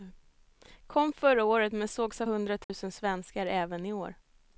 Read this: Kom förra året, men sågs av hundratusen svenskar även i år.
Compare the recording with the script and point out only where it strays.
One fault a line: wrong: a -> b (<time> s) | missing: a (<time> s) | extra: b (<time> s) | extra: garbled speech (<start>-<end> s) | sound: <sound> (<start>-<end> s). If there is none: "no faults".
sound: dropout (2.6-2.7 s)